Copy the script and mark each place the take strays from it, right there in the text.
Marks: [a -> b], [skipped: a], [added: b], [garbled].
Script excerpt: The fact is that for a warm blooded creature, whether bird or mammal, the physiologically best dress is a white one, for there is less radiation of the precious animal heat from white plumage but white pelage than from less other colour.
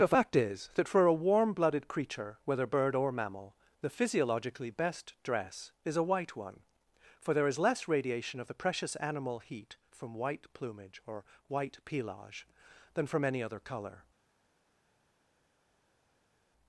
The fact is that for a warm blooded creature, whether bird or mammal, the physiologically best dress is a white one, for there is less radiation of the precious animal heat from white plumage [but -> or] white pelage than from [less -> any] other colour.